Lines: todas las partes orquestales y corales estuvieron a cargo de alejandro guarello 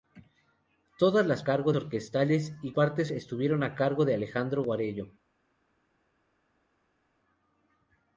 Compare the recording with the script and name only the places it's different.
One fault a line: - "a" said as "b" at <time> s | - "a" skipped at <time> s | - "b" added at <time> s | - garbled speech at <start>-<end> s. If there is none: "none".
- "partes" said as "cargo" at 1.4 s
- "corales" said as "partes" at 2.7 s